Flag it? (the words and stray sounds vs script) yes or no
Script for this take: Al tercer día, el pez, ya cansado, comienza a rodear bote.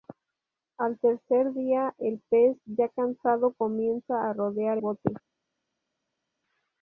no